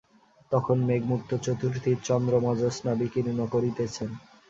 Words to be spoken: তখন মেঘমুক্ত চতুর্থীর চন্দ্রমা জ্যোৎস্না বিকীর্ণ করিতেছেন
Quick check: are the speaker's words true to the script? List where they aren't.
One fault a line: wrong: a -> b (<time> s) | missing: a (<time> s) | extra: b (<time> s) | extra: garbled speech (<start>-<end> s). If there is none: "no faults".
no faults